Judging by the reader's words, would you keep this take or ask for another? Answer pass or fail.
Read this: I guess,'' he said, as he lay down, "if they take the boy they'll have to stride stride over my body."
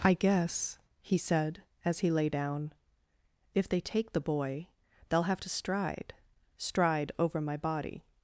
pass